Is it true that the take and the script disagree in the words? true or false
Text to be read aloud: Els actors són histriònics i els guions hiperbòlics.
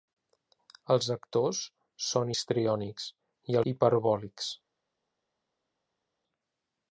true